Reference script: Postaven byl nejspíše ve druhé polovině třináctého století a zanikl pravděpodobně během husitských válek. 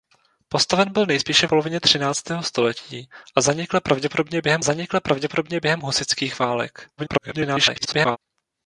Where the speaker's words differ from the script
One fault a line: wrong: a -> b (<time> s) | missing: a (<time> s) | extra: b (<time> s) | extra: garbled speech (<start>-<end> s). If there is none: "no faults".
missing: ve druhé (1.5 s)
extra: zanikl pravděpodobně během (4.6 s)
extra: garbled speech (7.0-8.2 s)